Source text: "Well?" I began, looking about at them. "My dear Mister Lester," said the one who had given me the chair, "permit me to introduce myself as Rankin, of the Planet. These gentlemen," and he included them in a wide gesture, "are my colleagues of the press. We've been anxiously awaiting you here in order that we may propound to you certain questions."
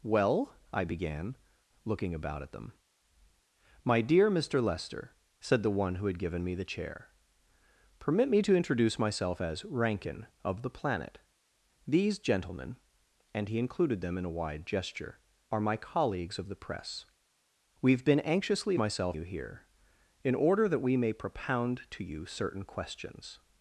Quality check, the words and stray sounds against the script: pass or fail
fail